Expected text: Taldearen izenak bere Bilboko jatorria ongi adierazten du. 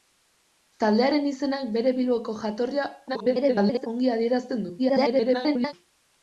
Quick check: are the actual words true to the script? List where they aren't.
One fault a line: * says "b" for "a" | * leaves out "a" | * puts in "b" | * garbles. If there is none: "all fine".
* garbles
* garbles